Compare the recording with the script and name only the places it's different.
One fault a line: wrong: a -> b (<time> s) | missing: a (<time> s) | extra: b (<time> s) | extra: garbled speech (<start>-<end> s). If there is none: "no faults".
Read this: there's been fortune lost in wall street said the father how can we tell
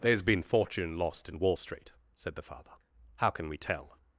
no faults